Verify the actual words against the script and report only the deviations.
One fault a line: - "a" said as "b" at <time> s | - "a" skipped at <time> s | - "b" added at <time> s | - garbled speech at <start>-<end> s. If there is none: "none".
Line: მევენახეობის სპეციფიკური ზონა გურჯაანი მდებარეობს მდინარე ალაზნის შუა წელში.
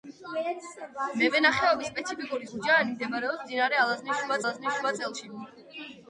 - "ზონა" skipped at 2.5 s
- "ალაზნის შუა" added at 4.4 s